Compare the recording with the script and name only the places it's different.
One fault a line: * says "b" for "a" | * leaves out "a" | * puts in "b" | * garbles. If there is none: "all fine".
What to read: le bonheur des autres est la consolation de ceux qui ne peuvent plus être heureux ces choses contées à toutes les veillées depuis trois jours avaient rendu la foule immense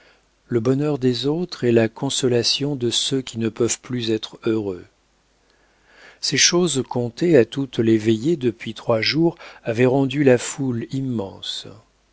all fine